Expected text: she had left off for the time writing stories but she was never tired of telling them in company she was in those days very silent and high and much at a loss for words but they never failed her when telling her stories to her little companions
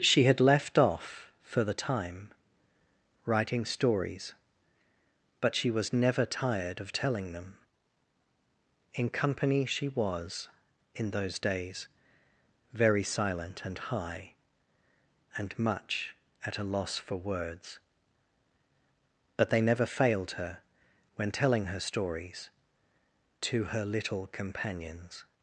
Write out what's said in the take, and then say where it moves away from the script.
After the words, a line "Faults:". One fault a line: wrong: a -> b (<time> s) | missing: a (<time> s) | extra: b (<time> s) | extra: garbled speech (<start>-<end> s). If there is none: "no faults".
she had left off for the time writing stories but she was never tired of telling them in company she was in those days very silent and high and much at a loss for words but they never failed her when telling her stories to her little companions
Faults:
no faults